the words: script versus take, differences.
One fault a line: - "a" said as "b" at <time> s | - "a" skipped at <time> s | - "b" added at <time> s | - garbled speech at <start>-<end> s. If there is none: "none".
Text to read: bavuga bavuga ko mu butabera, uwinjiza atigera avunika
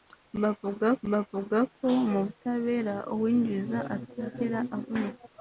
none